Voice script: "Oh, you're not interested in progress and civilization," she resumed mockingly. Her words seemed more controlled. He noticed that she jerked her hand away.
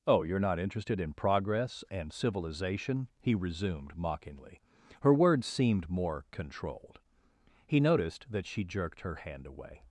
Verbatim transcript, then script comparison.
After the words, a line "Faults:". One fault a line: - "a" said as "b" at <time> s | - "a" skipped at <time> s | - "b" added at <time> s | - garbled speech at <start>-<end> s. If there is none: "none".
"Oh, you're not interested in progress and civilization," he resumed mockingly. Her words seemed more controlled. He noticed that she jerked her hand away.
Faults:
- "she" said as "he" at 3.2 s